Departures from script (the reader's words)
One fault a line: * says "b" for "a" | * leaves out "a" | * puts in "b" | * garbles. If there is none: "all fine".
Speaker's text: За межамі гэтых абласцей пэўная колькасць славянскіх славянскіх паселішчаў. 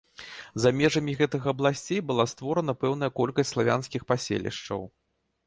* puts in "была створана"
* leaves out "славянскіх"